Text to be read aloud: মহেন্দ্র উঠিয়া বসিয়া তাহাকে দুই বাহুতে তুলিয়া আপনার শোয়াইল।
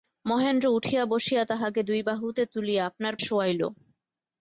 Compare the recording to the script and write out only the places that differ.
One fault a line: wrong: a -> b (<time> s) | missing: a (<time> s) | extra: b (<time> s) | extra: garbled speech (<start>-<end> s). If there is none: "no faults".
no faults